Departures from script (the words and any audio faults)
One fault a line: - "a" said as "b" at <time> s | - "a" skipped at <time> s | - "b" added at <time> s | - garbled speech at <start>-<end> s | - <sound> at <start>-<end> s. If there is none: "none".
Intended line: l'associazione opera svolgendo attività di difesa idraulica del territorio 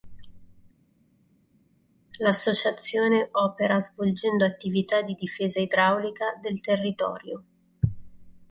none